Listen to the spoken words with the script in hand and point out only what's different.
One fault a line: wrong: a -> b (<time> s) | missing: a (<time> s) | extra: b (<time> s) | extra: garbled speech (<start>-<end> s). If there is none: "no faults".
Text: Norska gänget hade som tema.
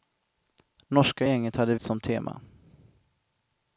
no faults